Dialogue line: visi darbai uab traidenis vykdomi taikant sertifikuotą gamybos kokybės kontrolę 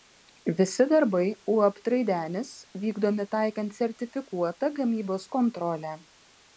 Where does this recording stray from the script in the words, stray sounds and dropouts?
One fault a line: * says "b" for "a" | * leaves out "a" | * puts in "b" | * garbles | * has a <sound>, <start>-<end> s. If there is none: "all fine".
* leaves out "kokybės"